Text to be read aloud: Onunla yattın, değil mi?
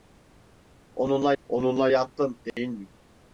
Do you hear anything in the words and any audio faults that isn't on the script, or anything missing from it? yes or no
yes